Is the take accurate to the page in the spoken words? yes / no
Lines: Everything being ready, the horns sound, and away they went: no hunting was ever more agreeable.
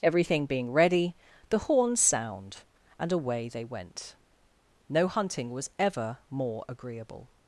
yes